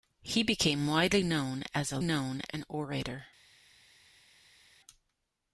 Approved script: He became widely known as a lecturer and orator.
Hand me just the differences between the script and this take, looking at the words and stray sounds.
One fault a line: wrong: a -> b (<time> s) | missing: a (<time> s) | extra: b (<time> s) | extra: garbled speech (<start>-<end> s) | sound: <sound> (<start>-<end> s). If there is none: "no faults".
wrong: lecturer -> known (2.0 s)